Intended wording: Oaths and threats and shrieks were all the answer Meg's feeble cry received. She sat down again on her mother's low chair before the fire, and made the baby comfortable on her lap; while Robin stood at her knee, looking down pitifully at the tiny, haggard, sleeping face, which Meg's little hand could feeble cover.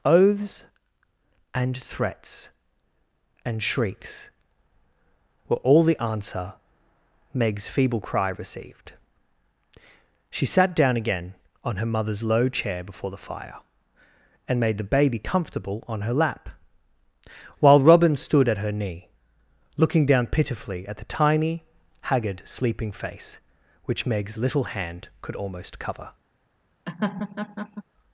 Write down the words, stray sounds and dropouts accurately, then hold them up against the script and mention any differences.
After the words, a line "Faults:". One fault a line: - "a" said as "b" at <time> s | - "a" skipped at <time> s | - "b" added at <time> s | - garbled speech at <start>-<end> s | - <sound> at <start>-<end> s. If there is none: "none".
Oaths and threats and shrieks were all the answer Meg's feeble cry received. She sat down again on her mother's low chair before the fire, and made the baby comfortable on her lap; while Robin stood at her knee, looking down pitifully at the tiny, haggard, sleeping face, which Meg's little hand could almost cover.
Faults:
- "feeble" said as "almost" at 25.4 s
- laugh at 26.9-27.8 s